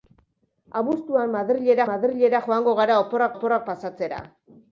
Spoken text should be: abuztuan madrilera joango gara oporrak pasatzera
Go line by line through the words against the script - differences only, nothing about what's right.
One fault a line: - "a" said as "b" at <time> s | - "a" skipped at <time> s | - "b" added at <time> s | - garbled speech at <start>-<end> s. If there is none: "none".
- "madrilera" added at 1.9 s
- "oporrak" added at 3.3 s